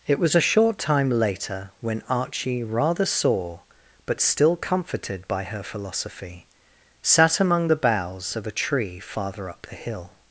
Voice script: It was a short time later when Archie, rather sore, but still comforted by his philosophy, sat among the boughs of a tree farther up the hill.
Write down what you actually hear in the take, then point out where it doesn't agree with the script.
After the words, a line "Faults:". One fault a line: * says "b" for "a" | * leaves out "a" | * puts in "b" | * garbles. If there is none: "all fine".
It was a short time later when Archie, rather sore, but still comforted by her philosophy, sat among the boughs of a tree farther up the hill.
Faults:
* says "her" for "his"